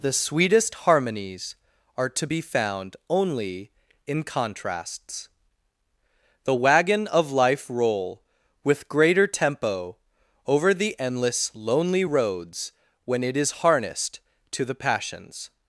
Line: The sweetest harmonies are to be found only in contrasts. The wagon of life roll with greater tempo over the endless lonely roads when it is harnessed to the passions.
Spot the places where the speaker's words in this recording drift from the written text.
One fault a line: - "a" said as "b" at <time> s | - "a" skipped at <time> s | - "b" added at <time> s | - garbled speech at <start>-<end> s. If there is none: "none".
none